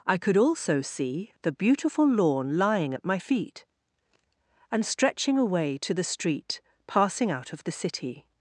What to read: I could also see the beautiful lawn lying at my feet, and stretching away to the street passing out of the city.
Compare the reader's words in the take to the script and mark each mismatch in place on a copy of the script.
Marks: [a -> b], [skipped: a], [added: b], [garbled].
I could also see the beautiful lawn lying at my feet, and stretching away to the street passing out of the city.